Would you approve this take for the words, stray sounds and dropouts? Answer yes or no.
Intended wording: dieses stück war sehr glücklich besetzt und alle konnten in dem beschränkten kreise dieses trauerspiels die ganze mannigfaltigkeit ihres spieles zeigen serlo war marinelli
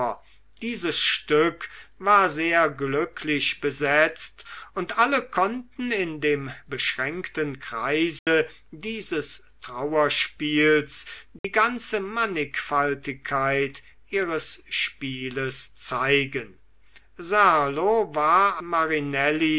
no